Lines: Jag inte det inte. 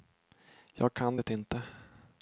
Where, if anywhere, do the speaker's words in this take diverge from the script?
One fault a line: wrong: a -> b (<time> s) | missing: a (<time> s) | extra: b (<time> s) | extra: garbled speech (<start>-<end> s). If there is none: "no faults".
wrong: inte -> kan (0.9 s)